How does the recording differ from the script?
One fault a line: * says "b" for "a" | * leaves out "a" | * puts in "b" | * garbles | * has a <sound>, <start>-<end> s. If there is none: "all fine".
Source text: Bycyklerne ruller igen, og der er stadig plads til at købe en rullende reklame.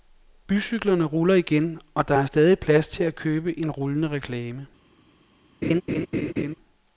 * has a laugh, 5.6-6.6 s